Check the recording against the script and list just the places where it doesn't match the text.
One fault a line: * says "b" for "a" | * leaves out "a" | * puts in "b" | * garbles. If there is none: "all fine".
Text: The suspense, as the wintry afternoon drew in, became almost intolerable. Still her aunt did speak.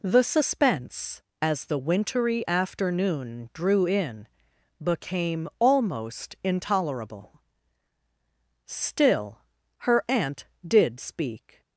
all fine